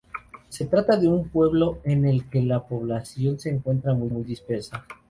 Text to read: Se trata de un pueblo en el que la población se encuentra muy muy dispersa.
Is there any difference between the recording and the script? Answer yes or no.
no